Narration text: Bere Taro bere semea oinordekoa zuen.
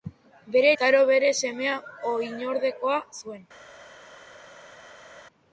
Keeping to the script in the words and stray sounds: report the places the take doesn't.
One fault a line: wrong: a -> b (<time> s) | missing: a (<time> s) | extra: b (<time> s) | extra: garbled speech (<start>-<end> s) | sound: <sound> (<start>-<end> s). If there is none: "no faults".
no faults